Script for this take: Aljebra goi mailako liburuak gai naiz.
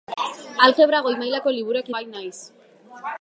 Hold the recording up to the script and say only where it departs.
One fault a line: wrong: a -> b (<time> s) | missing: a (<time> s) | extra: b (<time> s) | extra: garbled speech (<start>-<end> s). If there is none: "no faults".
no faults